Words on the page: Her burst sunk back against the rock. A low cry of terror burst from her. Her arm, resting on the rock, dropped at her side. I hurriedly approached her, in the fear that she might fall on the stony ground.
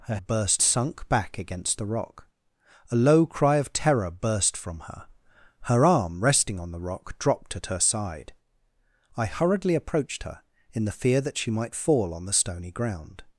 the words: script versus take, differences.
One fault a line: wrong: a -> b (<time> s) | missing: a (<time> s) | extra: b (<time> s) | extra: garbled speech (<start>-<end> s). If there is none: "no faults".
no faults